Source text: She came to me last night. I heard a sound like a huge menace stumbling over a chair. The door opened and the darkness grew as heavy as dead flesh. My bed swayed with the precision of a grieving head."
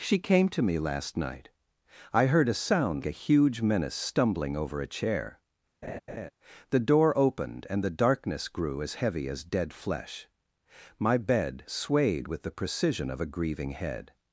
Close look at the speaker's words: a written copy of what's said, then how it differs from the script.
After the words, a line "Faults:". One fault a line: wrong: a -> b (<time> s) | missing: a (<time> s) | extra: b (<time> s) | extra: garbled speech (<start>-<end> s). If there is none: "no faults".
She came to me last night. I heard a sound a huge menace stumbling over a chair. The door opened and the darkness grew as heavy as dead flesh. My bed swayed with the precision of a grieving head."
Faults:
missing: like (3.0 s)